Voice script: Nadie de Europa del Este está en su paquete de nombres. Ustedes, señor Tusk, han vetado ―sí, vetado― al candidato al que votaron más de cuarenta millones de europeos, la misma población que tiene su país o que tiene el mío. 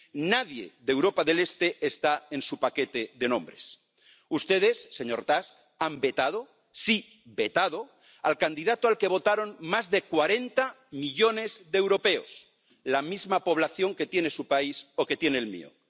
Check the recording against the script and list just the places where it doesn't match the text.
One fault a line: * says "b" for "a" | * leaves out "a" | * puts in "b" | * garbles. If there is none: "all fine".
all fine